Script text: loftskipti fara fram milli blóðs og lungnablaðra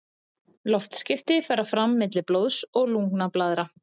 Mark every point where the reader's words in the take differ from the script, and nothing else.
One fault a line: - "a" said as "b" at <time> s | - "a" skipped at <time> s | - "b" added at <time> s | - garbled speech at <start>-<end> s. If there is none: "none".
none